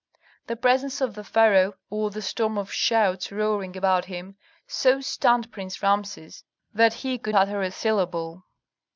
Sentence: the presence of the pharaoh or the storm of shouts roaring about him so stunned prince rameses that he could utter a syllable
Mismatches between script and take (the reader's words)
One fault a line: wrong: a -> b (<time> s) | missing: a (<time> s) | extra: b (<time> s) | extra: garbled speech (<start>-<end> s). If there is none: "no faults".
no faults